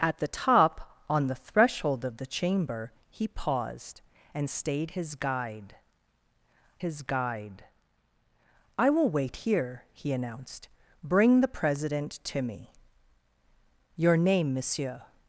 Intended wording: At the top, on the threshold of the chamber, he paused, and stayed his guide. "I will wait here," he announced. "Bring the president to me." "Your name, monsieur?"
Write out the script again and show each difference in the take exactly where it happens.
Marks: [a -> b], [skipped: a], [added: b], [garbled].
At the top, on the threshold of the chamber, he paused, and stayed his guide. [added: his guide] "I will wait here," he announced. "Bring the president to me." "Your name, monsieur?"